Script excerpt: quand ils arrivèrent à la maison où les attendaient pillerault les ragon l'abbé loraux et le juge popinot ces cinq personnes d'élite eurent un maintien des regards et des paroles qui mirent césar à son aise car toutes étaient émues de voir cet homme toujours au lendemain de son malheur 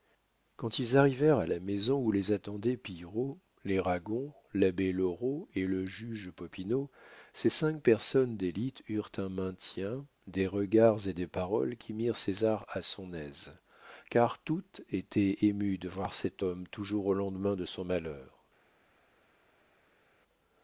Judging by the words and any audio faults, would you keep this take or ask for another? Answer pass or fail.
pass